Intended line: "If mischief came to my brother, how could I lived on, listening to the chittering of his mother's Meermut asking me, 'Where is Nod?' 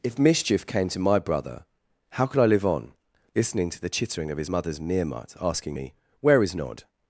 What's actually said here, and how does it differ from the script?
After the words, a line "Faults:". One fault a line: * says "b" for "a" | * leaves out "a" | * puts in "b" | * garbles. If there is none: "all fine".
"If mischief came to my brother, how could I live on, listening to the chittering of his mother's Meermut asking me, 'Where is Nod?'
Faults:
* says "live" for "lived"